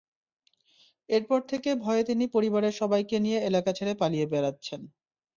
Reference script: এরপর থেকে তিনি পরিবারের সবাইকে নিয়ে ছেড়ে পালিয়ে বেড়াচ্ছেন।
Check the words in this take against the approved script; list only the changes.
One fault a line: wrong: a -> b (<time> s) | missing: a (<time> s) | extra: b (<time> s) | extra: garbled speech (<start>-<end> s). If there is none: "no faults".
extra: ভয়ে (1.8 s)
extra: এলাকা (3.5 s)